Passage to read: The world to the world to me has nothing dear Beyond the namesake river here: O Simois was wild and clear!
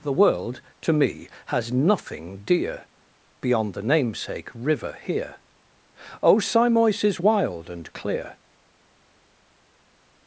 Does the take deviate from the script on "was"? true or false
true